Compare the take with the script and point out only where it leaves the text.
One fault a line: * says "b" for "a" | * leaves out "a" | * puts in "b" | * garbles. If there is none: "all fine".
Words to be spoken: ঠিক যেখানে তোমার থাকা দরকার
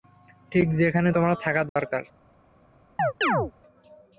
all fine